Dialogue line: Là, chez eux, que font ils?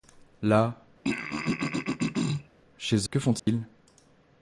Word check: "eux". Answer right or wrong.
wrong